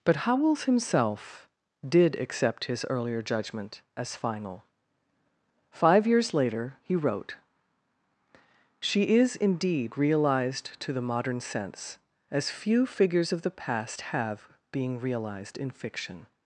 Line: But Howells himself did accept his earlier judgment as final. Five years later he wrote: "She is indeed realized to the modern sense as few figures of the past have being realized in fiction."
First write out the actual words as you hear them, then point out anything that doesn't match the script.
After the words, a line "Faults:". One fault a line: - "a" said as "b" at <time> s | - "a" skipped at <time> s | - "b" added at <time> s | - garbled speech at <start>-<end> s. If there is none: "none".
But Howells himself did accept his earlier judgment as final. Five years later he wrote: "She is indeed realized to the modern sense as few figures of the past have being realized in fiction."
Faults:
none